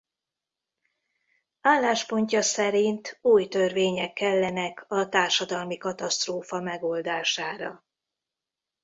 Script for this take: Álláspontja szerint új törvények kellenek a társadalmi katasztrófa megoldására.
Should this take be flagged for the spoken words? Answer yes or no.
no